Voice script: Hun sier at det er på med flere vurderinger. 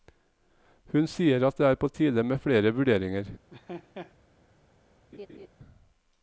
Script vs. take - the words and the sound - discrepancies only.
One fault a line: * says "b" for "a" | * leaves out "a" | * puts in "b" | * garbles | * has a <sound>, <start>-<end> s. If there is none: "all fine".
* puts in "tide"
* has a laugh, 3.5-4.1 s
* has a laugh, 5.1-5.5 s